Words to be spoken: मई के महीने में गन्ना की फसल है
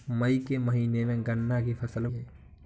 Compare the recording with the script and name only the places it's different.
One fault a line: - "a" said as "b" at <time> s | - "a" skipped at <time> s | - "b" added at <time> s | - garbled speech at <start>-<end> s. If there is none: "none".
none